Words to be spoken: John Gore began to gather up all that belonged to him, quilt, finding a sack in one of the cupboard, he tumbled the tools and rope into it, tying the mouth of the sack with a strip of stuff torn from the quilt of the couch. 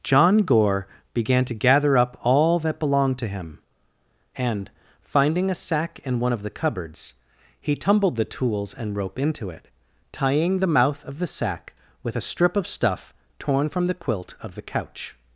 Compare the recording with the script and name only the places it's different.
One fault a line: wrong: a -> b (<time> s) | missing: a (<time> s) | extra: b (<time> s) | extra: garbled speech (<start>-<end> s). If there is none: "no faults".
wrong: quilt -> and (4.3 s)
wrong: cupboard -> cupboards (6.5 s)